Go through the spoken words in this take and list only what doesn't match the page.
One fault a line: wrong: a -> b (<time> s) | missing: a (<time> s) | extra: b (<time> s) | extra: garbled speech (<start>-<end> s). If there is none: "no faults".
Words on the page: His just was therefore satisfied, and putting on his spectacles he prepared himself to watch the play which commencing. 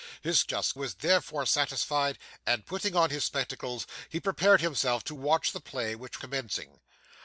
no faults